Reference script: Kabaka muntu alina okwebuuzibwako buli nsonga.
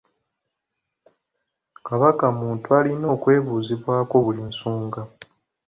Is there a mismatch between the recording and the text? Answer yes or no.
no